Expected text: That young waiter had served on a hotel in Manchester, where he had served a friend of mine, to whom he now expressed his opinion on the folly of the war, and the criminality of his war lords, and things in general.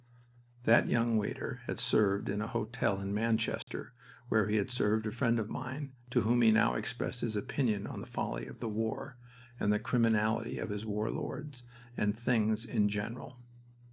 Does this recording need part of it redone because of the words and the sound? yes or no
yes